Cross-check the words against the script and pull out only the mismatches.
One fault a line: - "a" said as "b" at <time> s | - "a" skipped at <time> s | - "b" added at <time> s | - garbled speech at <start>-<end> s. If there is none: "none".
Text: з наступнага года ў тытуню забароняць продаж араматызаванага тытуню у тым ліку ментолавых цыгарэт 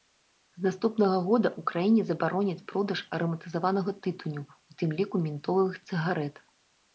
- "тытуню" said as "краіне" at 1.7 s